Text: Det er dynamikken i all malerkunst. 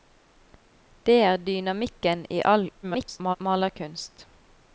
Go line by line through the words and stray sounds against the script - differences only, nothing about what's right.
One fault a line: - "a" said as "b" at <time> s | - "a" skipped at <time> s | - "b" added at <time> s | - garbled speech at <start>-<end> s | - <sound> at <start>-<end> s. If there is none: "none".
- garbled speech at 2.8-3.4 s